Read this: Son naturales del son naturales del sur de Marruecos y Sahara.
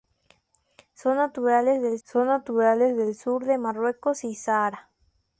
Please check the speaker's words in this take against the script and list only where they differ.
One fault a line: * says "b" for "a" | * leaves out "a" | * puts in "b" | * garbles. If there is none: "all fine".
all fine